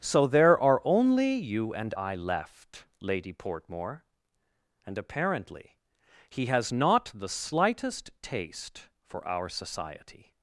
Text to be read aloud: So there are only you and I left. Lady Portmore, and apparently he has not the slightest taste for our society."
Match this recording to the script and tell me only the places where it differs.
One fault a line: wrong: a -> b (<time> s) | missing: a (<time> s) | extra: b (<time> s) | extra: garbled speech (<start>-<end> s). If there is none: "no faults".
no faults